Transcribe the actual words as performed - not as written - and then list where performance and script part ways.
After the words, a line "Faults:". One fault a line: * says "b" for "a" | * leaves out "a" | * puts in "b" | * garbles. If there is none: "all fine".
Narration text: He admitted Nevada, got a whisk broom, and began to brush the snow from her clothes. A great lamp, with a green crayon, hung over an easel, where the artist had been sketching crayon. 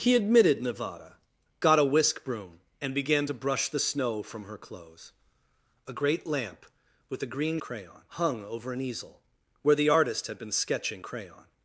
He admitted Nevada, got a whisk broom, and began to brush the snow from her clothes. A great lamp, with a green crayon, hung over an easel, where the artist had been sketching crayon.
Faults:
all fine